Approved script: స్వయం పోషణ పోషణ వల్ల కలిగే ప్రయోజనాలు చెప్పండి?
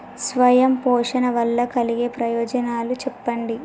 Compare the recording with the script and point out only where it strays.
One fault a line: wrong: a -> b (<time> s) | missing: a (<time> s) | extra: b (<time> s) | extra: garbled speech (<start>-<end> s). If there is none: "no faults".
missing: పోషణ (1.3 s)